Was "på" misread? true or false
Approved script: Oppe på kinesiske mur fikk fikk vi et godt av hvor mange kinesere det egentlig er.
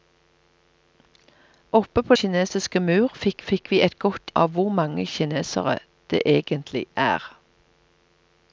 false